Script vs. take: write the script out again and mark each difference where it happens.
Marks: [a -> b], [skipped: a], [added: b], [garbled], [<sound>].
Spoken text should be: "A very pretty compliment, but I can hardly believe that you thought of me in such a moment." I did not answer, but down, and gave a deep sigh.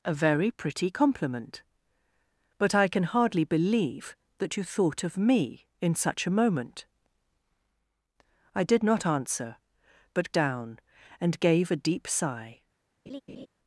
"A very pretty compliment, but I can hardly believe that you thought of me in such a moment." I did not answer, but down, and gave a deep sigh. [laugh]